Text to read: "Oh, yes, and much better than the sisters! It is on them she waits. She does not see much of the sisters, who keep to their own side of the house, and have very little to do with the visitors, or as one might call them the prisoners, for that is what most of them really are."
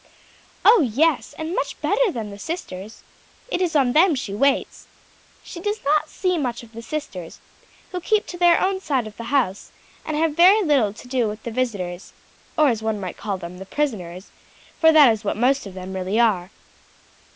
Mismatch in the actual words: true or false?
false